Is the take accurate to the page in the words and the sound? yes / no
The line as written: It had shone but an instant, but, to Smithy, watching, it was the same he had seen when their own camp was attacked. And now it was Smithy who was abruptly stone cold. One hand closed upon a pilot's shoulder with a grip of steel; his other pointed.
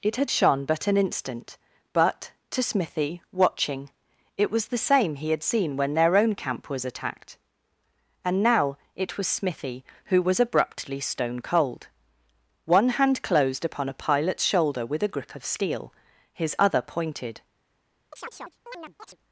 no